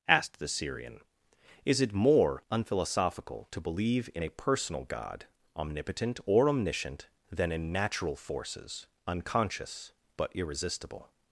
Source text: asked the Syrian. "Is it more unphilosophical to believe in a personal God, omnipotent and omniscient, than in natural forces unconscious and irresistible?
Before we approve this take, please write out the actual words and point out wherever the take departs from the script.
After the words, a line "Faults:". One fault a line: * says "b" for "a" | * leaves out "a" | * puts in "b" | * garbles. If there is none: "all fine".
asked the Syrian. "Is it more unphilosophical to believe in a personal God, omnipotent or omniscient, than in natural forces unconscious but irresistible?
Faults:
* says "or" for "and"
* says "but" for "and"